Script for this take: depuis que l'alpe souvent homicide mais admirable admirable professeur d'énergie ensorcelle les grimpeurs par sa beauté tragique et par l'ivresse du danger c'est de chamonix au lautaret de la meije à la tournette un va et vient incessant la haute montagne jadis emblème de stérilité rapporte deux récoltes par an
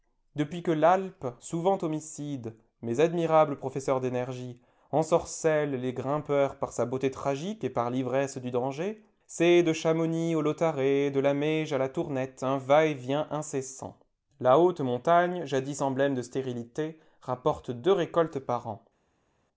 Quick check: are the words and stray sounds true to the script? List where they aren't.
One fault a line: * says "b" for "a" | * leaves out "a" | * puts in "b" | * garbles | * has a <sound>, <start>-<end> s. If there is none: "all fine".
* leaves out "admirable"